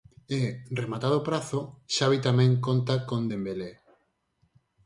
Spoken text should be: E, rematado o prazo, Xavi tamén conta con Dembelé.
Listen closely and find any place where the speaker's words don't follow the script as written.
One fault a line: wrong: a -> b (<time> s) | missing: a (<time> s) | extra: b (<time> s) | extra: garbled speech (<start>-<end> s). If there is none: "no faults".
no faults